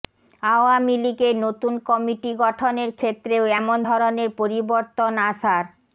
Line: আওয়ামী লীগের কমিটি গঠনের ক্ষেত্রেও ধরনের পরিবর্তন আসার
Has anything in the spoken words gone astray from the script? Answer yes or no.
yes